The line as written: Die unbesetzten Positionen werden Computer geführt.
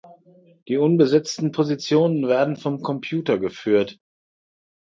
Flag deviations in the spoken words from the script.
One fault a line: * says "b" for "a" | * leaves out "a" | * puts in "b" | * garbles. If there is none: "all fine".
* puts in "vom"